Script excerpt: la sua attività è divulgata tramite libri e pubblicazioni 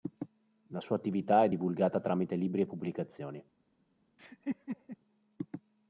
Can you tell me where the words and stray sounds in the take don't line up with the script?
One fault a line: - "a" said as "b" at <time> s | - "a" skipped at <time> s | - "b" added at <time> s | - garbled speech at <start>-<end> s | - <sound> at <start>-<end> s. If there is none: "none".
- laugh at 4.2-5.0 s